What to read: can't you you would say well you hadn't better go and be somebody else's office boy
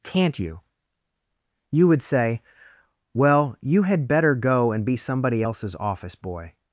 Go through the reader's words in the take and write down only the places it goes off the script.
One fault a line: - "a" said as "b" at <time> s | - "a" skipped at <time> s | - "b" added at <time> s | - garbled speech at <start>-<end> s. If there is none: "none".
- "hadn't" said as "had" at 3.8 s